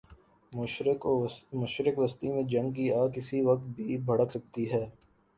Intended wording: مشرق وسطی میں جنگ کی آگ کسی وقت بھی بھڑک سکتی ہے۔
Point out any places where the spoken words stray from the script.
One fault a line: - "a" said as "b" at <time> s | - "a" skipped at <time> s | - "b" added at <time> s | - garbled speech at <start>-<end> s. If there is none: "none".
none